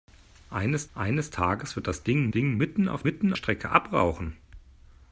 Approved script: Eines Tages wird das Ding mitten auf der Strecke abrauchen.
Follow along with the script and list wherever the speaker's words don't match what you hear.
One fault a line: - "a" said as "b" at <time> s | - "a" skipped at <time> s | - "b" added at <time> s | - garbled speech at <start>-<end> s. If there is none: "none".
- "eines" added at 0.9 s
- "Ding" added at 2.3 s
- "der" said as "mitten" at 3.0 s